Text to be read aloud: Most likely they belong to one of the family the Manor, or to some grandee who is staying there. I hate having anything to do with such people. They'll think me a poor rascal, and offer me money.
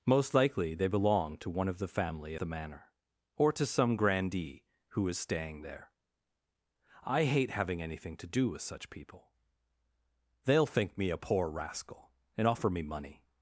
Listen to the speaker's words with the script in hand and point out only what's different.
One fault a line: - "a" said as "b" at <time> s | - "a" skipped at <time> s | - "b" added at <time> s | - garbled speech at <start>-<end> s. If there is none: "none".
none